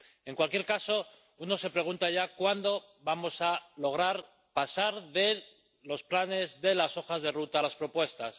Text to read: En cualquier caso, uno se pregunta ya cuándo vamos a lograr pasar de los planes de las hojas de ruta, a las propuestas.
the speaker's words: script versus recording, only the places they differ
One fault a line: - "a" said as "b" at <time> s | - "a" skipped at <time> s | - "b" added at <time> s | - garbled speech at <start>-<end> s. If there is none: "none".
none